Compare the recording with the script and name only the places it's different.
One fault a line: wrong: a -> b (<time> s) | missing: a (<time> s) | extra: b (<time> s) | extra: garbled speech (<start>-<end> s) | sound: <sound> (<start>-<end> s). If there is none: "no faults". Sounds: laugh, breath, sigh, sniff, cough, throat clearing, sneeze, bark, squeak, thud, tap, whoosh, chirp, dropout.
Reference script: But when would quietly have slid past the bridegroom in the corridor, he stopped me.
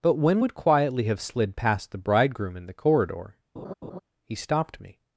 sound: laugh (3.6-4.0 s)